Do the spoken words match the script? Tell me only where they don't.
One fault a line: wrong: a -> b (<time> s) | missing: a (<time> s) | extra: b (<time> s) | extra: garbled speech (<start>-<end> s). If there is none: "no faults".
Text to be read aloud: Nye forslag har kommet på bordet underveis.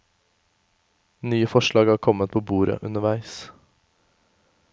no faults